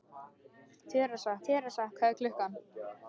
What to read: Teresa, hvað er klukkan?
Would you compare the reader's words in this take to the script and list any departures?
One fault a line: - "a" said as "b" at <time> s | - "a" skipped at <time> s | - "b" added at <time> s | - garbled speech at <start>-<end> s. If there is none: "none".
- "teresa" added at 1.5 s